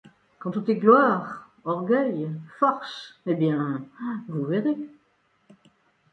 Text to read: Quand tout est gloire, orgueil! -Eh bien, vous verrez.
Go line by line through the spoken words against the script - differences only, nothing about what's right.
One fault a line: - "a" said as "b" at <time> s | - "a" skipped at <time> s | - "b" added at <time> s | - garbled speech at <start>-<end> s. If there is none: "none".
- "force" added at 2.6 s